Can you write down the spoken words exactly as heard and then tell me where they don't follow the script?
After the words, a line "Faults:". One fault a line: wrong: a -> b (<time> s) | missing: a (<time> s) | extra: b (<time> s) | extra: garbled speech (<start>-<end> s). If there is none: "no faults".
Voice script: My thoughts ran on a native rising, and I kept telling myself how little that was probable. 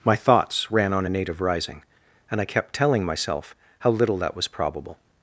My thoughts ran on a native rising, and I kept telling myself how little that was probable.
Faults:
no faults